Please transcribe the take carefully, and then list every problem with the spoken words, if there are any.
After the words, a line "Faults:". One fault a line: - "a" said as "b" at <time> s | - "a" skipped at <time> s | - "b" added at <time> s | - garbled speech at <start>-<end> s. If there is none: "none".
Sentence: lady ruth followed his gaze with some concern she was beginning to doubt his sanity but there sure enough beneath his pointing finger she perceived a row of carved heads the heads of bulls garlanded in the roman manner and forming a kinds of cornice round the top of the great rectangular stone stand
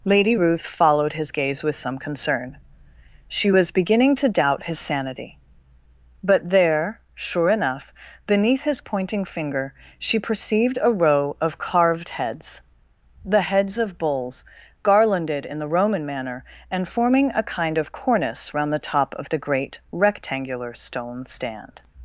lady ruth followed his gaze with some concern she was beginning to doubt his sanity but there sure enough beneath his pointing finger she perceived a row of carved heads the heads of bulls garlanded in the roman manner and forming a kind of cornice round the top of the great rectangular stone stand
Faults:
- "kinds" said as "kind" at 17.4 s